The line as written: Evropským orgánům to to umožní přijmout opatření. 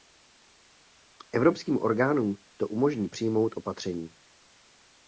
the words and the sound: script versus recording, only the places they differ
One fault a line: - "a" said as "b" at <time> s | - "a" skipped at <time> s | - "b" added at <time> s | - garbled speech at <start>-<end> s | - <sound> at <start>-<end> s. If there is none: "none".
- "to" skipped at 2.7 s